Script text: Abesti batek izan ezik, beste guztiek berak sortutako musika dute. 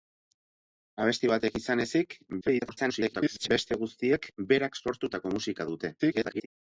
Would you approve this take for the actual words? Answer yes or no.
no